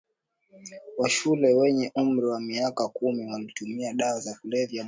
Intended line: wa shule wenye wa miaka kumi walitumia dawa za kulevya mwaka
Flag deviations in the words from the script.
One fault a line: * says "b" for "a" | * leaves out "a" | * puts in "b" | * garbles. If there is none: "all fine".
* puts in "umri"